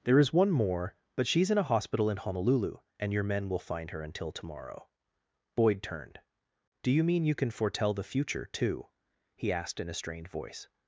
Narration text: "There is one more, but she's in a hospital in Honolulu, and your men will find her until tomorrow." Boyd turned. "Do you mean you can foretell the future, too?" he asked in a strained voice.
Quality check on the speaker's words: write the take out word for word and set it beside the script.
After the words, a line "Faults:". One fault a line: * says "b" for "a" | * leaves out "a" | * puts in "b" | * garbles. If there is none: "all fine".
"There is one more, but she's in a hospital in Honolulu, and your men will find her until tomorrow." Boyd turned. "Do you mean you can foretell the future, too?" he asked in a strained voice.
Faults:
all fine